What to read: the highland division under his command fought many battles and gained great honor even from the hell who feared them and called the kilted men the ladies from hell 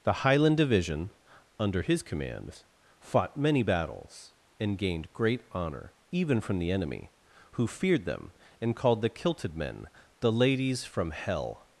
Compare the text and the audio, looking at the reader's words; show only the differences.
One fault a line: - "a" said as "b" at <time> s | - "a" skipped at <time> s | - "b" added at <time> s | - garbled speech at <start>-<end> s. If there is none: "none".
- "hell" said as "enemy" at 6.7 s